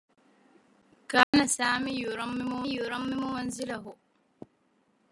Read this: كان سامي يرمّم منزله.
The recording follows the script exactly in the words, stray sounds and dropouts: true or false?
false